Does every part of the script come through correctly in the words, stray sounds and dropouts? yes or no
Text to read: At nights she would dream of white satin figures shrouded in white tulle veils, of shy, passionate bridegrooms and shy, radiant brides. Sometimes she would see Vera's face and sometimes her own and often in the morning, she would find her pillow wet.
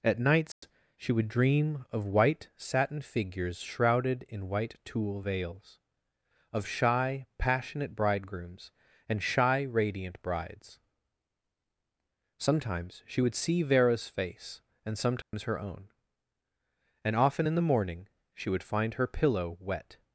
no